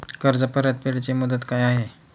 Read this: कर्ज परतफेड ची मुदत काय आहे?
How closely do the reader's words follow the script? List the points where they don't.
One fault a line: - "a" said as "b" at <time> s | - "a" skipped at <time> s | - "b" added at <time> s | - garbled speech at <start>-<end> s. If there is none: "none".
none